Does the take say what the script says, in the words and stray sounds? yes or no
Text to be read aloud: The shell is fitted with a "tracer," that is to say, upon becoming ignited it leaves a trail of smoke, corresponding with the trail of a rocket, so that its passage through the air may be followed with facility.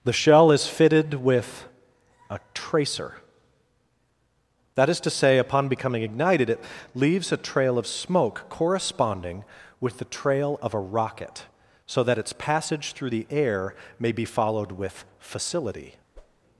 no